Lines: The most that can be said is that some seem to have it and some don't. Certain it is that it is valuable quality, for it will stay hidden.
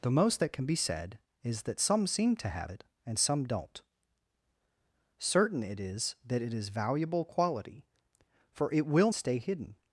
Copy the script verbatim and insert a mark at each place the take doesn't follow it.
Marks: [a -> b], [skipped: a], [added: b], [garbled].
The most that can be said is that some seem to have it and some don't. Certain it is that it is valuable quality, for it will stay hidden.